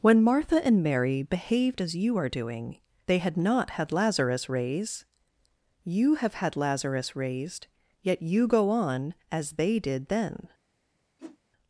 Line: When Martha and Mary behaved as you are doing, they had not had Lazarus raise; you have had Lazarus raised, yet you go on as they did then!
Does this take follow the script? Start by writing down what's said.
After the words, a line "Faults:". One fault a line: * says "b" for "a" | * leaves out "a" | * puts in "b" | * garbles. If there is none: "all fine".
When Martha and Mary behaved as you are doing, they had not had Lazarus raise; you have had Lazarus raised, yet you go on as they did then!
Faults:
all fine